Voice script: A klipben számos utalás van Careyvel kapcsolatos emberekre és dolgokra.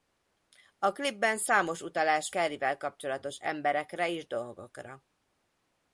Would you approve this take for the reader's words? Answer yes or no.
no